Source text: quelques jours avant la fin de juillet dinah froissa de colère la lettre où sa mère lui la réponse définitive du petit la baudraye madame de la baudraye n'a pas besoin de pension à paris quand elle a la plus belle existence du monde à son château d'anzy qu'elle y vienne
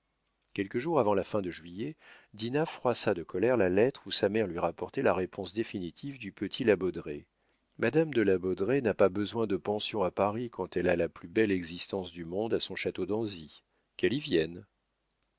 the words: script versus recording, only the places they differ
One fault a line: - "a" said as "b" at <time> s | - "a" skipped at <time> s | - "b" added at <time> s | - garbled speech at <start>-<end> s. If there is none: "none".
- "rapportait" added at 4.6 s